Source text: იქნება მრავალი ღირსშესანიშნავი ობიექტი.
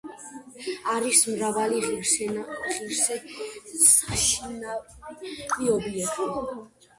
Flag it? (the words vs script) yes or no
yes